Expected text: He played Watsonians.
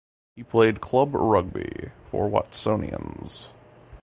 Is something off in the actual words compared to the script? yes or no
yes